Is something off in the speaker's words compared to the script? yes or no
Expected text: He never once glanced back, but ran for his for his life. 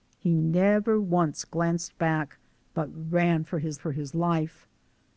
no